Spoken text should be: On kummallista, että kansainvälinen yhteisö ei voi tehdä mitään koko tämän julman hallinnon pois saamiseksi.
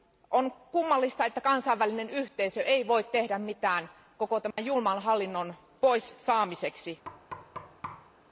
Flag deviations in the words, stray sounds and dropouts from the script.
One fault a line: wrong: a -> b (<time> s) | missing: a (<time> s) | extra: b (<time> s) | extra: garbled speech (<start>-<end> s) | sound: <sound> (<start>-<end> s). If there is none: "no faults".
sound: dropout (4.5-4.6 s)
sound: thud (7.0-8.1 s)